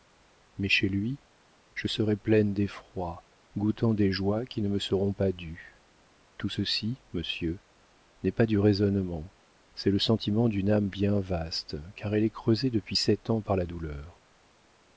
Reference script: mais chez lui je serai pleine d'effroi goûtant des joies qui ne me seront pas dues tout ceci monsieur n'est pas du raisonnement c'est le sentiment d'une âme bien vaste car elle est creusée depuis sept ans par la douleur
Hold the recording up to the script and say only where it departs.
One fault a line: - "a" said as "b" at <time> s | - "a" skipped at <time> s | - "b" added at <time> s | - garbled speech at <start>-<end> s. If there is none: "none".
none